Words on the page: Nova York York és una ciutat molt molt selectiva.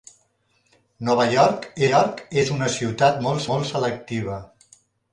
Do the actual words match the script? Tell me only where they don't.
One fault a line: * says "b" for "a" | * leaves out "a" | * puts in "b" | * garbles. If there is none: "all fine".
all fine